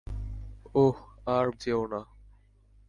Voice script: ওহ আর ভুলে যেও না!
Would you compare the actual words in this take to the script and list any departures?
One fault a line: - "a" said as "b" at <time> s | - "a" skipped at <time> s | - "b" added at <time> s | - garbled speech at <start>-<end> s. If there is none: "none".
- "ভুলে" skipped at 1.5 s